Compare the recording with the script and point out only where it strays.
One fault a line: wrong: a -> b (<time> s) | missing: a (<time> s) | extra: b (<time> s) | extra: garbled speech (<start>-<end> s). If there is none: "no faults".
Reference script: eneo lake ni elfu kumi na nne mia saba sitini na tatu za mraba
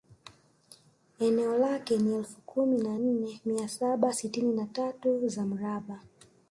no faults